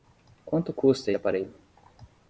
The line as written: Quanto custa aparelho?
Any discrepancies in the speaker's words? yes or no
no